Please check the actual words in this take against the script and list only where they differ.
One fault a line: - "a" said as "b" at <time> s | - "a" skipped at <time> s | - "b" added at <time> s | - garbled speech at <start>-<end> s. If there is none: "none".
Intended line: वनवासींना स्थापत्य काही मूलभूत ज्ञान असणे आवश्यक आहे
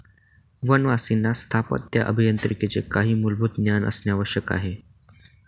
- "अभियांत्रिकीचे" added at 2.0 s